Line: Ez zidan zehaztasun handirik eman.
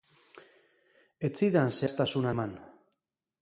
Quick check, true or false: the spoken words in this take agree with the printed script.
false